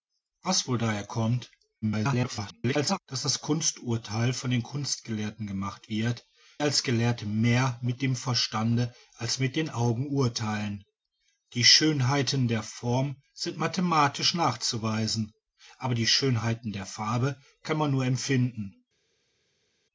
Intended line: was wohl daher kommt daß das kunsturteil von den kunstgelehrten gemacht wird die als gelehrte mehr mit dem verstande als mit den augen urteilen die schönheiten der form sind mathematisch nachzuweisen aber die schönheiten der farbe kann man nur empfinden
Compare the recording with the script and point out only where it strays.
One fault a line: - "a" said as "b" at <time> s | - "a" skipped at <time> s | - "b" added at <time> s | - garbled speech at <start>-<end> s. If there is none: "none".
- garbled speech at 1.8-3.0 s
- "die" skipped at 6.2 s